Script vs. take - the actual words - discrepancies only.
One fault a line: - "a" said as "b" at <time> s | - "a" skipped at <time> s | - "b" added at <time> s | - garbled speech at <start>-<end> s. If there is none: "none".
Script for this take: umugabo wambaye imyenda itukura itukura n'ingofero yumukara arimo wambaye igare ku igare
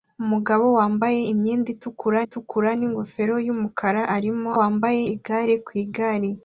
none